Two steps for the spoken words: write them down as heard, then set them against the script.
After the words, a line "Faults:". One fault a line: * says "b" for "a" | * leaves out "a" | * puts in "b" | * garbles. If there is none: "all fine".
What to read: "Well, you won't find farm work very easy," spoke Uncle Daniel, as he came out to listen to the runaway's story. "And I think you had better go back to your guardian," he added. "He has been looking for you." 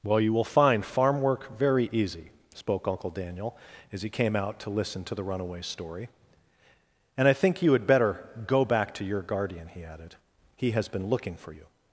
"Well, you will find farm work very easy," spoke Uncle Daniel, as he came out to listen to the runaway's story. "And I think you had better go back to your guardian," he added. "He has been looking for you."
Faults:
* says "will" for "won't"